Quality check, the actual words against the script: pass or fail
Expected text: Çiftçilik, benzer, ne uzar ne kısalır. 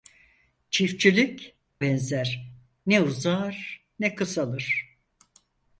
pass